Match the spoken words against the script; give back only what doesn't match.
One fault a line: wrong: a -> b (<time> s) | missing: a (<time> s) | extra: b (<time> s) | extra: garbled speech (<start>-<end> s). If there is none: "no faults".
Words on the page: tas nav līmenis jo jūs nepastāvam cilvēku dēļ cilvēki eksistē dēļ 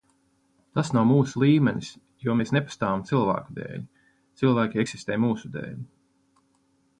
extra: mūsu (1.1 s)
wrong: jūs -> mēs (2.4 s)
extra: mūsu (5.3 s)